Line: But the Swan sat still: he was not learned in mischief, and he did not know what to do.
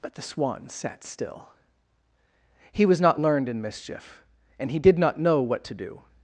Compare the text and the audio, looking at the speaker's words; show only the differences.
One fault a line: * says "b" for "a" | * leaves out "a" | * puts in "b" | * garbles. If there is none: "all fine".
all fine